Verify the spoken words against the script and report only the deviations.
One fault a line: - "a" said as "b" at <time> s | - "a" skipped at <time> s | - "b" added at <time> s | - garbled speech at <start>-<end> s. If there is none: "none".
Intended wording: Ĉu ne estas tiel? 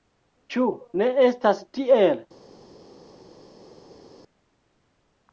none